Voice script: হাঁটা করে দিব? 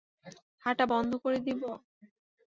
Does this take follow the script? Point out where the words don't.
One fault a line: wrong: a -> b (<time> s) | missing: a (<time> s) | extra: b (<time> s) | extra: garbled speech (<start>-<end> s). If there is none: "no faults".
extra: বন্ধ (0.9 s)